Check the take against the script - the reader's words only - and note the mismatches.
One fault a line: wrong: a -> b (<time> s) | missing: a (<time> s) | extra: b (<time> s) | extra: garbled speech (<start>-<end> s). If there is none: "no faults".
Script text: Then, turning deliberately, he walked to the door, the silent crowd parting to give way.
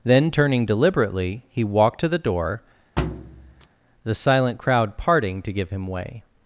extra: him (5.7 s)